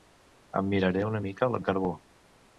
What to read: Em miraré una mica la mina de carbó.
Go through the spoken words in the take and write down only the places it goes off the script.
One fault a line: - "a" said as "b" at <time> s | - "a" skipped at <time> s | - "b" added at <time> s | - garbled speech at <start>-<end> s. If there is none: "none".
- "mina" skipped at 1.6 s